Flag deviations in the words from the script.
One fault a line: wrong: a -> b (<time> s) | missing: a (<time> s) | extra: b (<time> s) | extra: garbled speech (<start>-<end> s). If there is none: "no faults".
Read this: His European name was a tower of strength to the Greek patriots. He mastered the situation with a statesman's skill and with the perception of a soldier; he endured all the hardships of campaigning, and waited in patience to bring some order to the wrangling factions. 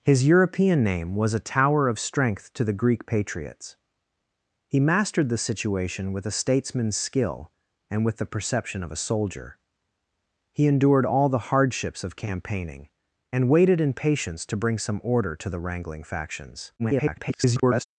extra: garbled speech (16.8-17.8 s)